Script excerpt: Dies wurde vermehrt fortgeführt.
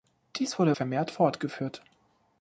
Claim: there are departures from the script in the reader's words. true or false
false